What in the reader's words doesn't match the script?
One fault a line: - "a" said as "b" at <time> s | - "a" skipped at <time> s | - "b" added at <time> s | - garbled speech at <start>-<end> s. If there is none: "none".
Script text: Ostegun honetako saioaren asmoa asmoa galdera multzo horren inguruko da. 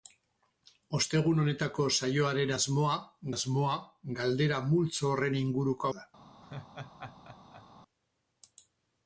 none